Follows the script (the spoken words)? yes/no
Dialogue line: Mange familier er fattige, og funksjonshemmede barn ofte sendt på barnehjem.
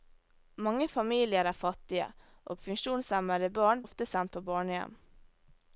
yes